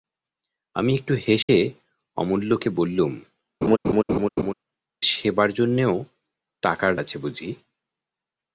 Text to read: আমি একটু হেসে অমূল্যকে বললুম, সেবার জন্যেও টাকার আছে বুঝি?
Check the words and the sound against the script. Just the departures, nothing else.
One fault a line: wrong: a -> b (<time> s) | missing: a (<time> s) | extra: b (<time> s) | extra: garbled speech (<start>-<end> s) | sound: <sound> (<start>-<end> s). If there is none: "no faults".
sound: dropout (1.4-1.5 s)
sound: laugh (3.6-4.5 s)